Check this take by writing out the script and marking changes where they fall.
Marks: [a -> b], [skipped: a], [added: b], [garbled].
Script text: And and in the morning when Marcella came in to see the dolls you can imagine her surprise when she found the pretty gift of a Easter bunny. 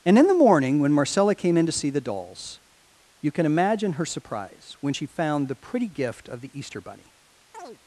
And [skipped: and] in the morning when Marcella came in to see the dolls you can imagine her surprise when she found the pretty gift of [a -> the] Easter bunny.